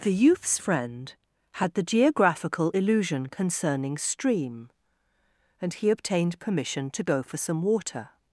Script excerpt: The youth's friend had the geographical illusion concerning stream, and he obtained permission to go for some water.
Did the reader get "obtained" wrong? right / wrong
right